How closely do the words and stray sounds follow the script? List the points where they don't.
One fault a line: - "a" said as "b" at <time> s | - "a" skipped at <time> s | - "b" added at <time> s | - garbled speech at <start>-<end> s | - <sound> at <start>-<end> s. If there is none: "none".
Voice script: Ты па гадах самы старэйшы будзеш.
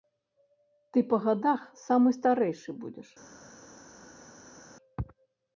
none